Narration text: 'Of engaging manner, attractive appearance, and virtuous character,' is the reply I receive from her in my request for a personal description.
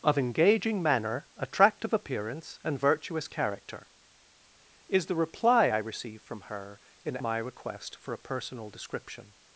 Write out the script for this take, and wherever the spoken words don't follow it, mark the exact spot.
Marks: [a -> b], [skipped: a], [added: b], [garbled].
'Of engaging manner, attractive appearance, and virtuous character,' is the reply I receive from her in my request for a personal description.